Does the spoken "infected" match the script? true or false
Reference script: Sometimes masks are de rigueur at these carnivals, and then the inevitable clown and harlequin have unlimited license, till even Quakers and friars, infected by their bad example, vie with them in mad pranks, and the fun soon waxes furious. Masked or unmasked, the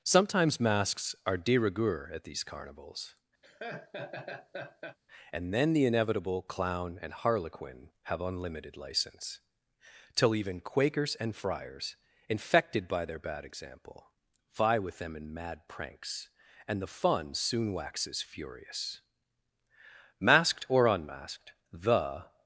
true